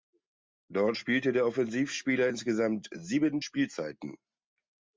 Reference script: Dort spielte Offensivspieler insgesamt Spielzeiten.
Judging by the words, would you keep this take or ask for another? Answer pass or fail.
fail